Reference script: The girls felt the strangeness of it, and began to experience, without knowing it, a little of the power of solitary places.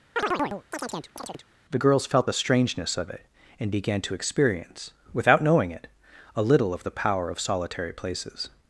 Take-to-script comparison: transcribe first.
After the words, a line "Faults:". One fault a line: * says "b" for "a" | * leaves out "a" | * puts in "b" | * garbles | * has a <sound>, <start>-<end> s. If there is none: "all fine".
The girls felt the strangeness of it, and began to experience, without knowing it, a little of the power of solitary places.
Faults:
* has a chirp, 0.2-1.5 s